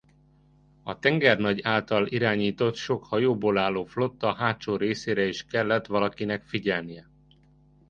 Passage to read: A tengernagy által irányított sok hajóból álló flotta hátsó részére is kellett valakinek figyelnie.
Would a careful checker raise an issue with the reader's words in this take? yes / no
no